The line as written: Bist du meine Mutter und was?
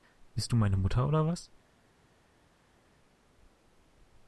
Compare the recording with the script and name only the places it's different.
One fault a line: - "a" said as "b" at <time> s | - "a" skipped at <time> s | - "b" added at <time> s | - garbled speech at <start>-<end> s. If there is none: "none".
- "und" said as "oder" at 1.1 s